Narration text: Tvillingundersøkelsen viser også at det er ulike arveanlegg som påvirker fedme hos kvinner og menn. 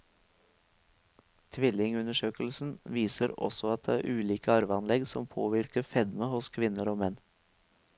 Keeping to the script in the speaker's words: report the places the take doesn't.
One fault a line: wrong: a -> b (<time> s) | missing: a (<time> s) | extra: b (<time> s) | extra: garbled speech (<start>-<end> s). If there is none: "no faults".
no faults